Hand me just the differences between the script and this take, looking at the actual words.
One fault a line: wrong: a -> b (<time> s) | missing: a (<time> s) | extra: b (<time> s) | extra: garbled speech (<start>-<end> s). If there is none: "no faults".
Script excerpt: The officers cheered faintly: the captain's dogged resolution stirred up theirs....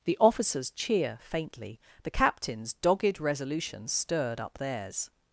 wrong: cheered -> cheer (0.7 s)